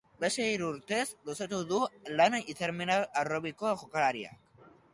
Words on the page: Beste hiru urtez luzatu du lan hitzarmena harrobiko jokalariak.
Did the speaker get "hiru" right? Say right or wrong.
right